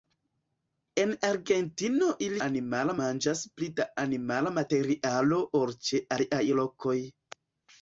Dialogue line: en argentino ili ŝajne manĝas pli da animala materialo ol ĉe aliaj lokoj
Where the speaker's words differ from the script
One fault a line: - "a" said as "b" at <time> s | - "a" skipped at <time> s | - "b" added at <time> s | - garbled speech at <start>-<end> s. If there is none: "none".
- "ŝajne" said as "animala" at 2.5 s